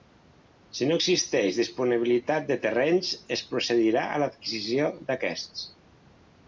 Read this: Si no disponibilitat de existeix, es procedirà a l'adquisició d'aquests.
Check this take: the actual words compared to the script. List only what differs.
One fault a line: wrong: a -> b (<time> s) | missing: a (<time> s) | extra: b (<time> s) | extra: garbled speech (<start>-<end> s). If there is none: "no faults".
extra: existeix (1.0 s)
wrong: existeix -> terrenys (2.7 s)